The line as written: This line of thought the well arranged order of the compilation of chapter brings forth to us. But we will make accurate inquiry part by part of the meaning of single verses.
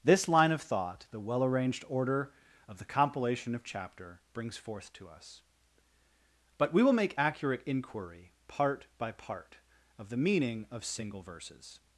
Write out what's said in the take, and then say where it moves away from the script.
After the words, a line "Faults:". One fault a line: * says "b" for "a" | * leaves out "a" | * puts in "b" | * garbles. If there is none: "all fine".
This line of thought the well arranged order of the compilation of chapter brings forth to us. But we will make accurate inquiry part by part of the meaning of single verses.
Faults:
all fine